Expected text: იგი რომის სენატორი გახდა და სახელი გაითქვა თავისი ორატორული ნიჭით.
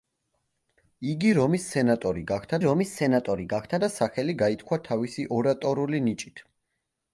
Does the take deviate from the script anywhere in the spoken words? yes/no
yes